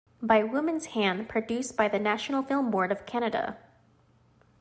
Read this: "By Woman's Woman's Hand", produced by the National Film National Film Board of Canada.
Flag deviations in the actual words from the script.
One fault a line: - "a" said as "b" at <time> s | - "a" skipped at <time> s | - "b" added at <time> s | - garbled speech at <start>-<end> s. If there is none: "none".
- "Woman's" skipped at 0.9 s
- "National Film" skipped at 2.7 s